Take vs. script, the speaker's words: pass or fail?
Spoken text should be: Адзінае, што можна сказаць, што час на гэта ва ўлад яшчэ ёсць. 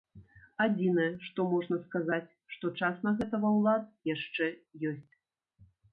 pass